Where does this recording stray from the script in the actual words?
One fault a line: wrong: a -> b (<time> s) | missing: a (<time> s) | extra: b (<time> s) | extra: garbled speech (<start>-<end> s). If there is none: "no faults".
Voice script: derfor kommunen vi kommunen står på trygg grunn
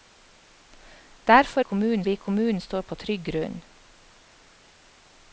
no faults